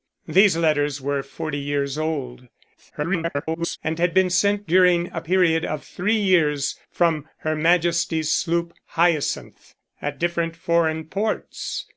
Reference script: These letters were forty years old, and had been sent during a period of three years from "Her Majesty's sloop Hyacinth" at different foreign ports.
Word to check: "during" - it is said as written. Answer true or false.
true